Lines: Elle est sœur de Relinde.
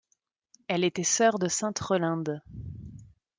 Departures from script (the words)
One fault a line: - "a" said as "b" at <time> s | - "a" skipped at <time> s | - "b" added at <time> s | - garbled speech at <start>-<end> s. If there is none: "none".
- "est" said as "était" at 0.8 s
- "sainte" added at 1.5 s